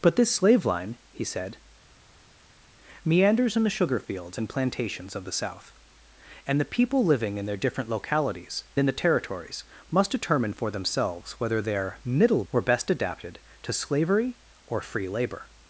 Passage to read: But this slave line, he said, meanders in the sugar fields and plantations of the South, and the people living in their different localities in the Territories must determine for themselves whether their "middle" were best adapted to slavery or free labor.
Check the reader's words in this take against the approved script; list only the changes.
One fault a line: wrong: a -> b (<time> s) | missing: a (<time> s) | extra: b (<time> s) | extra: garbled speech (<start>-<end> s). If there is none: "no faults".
no faults